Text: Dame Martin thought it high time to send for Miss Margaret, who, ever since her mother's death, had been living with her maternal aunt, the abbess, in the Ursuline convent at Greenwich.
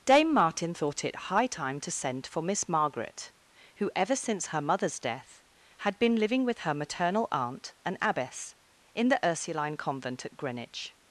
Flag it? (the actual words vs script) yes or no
yes